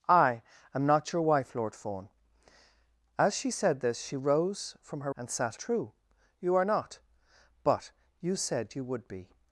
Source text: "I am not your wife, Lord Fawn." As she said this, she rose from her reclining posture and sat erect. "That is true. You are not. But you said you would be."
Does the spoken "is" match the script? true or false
false